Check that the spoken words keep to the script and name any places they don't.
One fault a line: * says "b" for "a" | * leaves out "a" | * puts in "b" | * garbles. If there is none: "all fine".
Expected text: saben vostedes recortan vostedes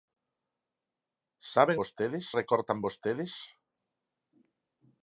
all fine